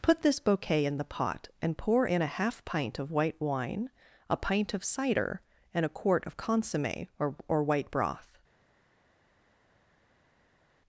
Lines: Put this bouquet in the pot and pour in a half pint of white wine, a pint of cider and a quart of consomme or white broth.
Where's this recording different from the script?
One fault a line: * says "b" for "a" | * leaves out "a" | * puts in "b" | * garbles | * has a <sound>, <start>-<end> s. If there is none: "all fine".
* puts in "or"